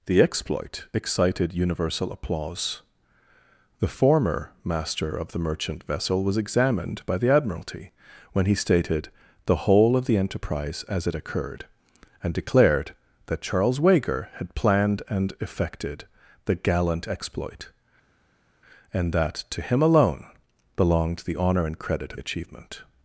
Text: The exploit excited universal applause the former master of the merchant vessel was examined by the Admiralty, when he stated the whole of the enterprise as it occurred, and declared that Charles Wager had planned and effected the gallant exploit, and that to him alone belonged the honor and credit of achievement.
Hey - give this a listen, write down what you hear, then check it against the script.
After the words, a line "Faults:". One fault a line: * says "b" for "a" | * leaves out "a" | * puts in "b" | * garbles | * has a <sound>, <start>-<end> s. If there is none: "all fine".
The exploit excited universal applause the former master of the merchant vessel was examined by the Admiralty, when he stated the whole of the enterprise as it occurred, and declared that Charles Wager had planned and effected the gallant exploit, and that to him alone belonged the honor and credit of achievement.
Faults:
all fine